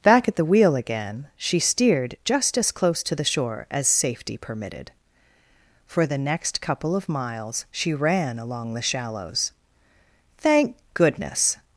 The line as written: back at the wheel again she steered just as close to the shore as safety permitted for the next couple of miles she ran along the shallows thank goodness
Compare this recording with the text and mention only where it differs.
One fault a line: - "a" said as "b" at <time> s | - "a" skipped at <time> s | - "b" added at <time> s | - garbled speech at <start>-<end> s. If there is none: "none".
none